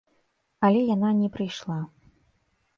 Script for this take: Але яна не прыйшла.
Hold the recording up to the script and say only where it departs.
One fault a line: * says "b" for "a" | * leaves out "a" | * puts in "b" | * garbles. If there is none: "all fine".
all fine